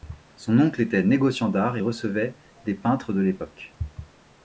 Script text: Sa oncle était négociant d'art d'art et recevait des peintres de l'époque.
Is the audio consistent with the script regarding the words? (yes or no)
no